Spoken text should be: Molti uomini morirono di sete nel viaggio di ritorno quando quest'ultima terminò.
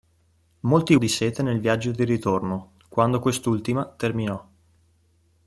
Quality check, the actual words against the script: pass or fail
fail